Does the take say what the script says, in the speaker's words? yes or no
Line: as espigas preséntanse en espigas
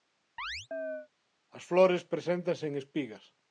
no